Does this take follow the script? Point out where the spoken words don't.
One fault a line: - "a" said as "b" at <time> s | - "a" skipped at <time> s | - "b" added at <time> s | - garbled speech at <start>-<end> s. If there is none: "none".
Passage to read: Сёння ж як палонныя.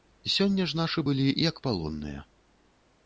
- "нашы былі" added at 0.8 s